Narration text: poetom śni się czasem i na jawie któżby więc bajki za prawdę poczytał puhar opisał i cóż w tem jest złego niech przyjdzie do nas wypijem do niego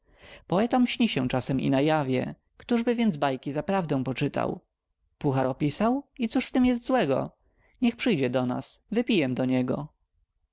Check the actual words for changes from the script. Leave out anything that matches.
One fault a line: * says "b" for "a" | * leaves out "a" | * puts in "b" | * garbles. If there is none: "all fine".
all fine